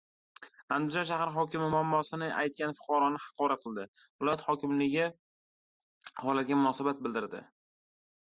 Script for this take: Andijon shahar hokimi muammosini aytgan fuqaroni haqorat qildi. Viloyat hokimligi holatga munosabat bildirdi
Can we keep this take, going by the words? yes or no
yes